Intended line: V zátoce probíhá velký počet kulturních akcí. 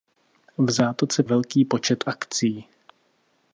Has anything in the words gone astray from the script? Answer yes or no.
yes